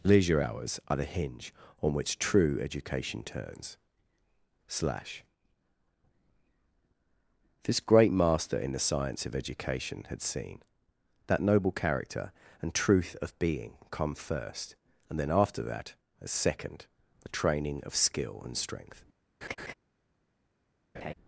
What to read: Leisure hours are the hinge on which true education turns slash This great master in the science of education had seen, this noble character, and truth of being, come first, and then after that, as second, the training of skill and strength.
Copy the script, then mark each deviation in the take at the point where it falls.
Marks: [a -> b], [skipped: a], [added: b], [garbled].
Leisure hours are the hinge on which true education turns slash This great master in the science of education had seen, [this -> that] noble character, and truth of being, come first, and then after that, as second, the training of skill and strength.